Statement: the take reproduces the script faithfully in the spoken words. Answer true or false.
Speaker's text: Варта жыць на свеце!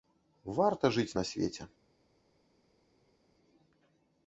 true